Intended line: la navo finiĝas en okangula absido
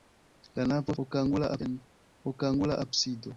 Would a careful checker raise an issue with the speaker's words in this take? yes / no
yes